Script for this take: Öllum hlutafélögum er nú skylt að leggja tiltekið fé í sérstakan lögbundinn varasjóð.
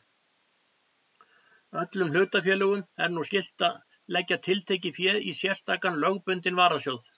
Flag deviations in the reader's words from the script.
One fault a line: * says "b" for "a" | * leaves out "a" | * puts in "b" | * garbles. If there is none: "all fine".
all fine